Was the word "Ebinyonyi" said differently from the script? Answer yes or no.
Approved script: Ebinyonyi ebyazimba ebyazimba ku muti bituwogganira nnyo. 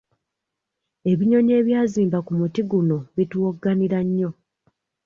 no